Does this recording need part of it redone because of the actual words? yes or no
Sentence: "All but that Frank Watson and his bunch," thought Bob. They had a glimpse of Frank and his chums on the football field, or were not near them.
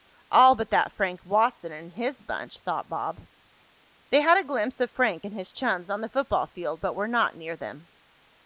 yes